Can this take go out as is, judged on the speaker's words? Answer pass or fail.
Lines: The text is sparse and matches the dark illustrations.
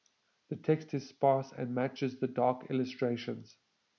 pass